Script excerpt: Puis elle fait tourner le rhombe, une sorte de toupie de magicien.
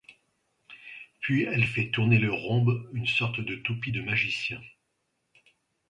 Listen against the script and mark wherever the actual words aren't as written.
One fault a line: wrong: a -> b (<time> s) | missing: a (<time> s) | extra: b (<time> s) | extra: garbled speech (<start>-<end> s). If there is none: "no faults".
no faults